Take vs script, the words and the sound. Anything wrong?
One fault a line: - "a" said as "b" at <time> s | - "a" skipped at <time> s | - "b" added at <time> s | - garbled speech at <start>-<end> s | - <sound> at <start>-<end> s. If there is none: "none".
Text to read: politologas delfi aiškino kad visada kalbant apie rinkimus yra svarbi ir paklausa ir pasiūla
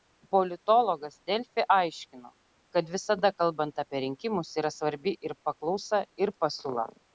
none